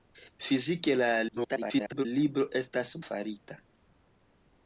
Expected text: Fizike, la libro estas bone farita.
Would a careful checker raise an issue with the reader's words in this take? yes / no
yes